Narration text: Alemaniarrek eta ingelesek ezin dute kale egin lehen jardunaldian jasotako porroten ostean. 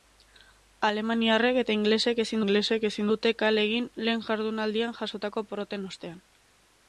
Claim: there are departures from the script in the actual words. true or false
true